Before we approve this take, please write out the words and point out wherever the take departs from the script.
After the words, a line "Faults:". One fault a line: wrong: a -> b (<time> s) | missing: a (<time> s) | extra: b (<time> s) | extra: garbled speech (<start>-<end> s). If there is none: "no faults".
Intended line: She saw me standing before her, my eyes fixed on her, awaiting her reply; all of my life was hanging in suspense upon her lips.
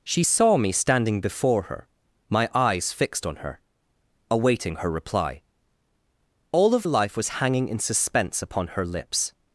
She saw me standing before her, my eyes fixed on her, awaiting her reply; all of life was hanging in suspense upon her lips.
Faults:
missing: my (6.9 s)